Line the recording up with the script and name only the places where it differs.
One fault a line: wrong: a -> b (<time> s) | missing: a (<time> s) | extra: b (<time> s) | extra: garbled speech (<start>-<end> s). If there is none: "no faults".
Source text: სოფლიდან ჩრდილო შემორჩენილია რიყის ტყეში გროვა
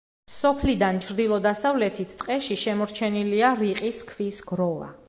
extra: დასავლეთით ტყეში (1.5 s)
wrong: ტყეში -> ქვის (4.1 s)